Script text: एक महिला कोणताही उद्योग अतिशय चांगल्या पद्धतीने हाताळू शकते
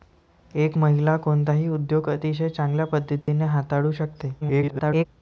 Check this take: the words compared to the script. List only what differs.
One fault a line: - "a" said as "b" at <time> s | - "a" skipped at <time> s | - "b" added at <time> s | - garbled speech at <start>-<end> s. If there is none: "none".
- garbled speech at 4.4-5.1 s